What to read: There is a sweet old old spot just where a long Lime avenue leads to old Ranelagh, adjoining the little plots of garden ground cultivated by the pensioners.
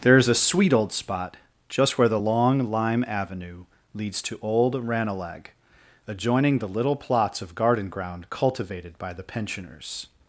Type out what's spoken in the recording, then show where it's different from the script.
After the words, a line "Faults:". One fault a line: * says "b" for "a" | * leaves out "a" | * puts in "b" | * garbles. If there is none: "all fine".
There is a sweet old spot just where the long Lime avenue leads to old Ranelagh, adjoining the little plots of garden ground cultivated by the pensioners.
Faults:
* leaves out "old"
* says "the" for "a"